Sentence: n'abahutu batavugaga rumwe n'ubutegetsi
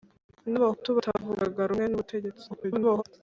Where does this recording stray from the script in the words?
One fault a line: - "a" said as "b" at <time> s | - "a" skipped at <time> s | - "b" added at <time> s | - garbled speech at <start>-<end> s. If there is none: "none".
- garbled speech at 2.5-3.0 s